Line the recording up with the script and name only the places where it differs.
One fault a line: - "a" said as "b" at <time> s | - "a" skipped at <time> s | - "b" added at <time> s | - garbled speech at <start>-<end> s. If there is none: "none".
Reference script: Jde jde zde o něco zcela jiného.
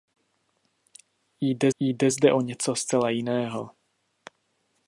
none